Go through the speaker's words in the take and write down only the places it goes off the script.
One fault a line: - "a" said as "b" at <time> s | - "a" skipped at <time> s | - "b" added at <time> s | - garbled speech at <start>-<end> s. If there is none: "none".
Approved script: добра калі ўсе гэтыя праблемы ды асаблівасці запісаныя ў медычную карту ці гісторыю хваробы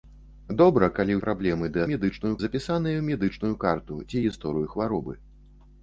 - "ўсе гэтыя" skipped at 1.2 s
- "асаблівасці" said as "медычную" at 1.9 s